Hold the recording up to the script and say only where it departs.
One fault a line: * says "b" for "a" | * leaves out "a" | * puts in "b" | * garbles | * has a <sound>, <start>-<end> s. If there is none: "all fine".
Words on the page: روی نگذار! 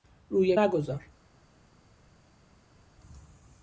all fine